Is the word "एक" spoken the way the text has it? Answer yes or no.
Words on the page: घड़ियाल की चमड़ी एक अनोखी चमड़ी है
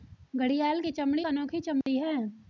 no